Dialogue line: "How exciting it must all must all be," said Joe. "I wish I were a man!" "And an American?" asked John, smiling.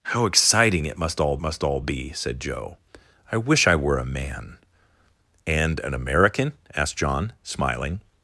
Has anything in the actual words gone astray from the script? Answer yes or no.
no